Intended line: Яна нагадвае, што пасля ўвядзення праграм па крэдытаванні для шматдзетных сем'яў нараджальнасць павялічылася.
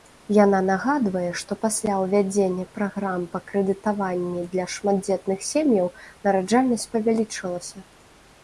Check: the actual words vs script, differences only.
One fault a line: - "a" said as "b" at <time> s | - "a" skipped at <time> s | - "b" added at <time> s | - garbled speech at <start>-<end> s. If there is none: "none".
none